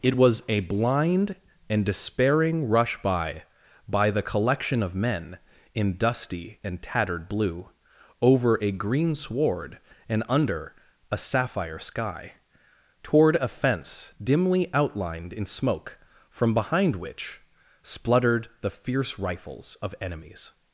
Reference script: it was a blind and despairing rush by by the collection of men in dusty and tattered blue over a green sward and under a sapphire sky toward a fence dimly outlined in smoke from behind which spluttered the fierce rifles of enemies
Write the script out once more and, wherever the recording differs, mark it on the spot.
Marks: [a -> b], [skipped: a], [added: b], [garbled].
it was a blind and despairing rush by by the collection of men in dusty and tattered blue over a green sward and under a sapphire sky toward a fence dimly outlined in smoke from behind which spluttered the fierce rifles of enemies